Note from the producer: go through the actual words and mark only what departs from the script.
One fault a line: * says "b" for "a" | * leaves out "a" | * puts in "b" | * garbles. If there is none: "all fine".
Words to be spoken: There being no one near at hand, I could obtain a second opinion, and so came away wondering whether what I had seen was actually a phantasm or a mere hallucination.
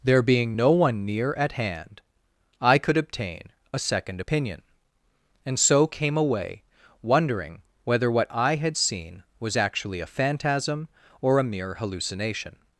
all fine